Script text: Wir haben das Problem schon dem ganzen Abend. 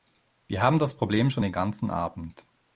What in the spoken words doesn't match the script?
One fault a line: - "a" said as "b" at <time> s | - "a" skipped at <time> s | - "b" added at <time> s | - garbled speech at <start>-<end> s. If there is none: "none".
- "dem" said as "den" at 1.4 s